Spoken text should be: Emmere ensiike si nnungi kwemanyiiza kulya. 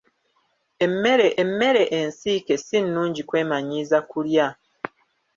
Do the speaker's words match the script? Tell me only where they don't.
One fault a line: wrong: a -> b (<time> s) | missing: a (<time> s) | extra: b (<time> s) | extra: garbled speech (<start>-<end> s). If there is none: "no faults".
extra: emmere (1.4 s)